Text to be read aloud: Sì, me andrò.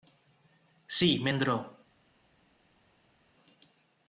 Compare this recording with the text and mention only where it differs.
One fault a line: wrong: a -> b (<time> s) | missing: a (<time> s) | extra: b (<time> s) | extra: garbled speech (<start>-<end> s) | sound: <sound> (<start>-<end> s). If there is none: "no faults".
no faults